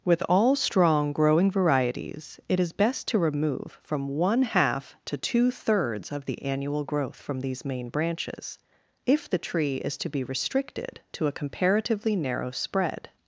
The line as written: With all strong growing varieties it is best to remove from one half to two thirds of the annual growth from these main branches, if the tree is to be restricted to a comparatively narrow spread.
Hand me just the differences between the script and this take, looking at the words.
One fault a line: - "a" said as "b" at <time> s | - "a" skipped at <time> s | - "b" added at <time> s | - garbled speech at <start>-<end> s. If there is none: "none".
none